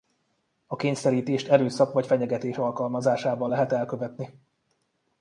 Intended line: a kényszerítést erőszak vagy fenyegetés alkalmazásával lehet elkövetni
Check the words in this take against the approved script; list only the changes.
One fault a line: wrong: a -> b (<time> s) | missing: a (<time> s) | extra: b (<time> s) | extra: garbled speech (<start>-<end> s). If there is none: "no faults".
no faults